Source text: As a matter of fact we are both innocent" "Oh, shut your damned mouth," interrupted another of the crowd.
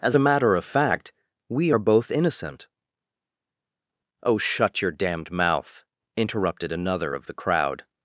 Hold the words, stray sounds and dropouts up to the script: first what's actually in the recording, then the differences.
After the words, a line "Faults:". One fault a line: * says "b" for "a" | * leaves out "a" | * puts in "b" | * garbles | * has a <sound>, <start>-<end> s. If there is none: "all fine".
As a matter of fact we are both innocent" "Oh, shut your damned mouth," interrupted another of the crowd.
Faults:
all fine